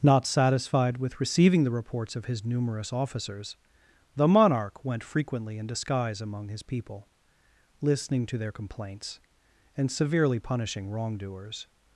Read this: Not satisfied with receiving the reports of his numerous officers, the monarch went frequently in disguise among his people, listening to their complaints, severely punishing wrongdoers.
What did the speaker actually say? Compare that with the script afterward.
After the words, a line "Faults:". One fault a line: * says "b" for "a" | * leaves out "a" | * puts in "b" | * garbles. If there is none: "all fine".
Not satisfied with receiving the reports of his numerous officers, the monarch went frequently in disguise among his people, listening to their complaints, and severely punishing wrongdoers.
Faults:
* puts in "and"